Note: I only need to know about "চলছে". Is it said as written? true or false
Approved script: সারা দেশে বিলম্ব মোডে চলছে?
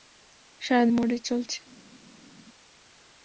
true